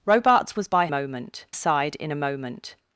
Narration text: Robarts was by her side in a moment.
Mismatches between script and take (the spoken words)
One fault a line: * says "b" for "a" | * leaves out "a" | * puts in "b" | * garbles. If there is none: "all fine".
* says "moment" for "her"